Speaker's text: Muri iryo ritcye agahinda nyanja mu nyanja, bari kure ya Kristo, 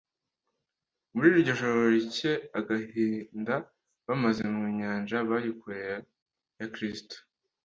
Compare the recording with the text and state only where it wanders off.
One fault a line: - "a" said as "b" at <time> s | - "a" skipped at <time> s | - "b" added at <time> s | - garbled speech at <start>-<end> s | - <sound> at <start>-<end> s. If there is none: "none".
- "joro" added at 1.6 s
- "nyanja" said as "bamaze" at 4.1 s